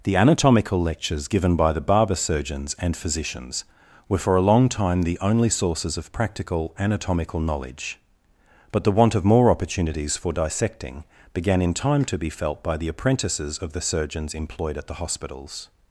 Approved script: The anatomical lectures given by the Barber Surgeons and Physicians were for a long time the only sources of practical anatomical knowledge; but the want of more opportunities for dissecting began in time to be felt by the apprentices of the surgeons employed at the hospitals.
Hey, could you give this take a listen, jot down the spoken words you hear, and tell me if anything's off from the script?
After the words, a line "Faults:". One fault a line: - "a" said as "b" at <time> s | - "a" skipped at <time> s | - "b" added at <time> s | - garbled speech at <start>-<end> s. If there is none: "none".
The anatomical lectures given by the Barber Surgeons and Physicians were for a long time the only sources of practical anatomical knowledge; but the want of more opportunities for dissecting began in time to be felt by the apprentices of the surgeons employed at the hospitals.
Faults:
none